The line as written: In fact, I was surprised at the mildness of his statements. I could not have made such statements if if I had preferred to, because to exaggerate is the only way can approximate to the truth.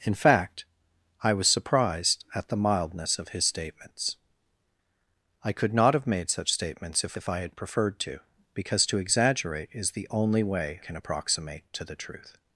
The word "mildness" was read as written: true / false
true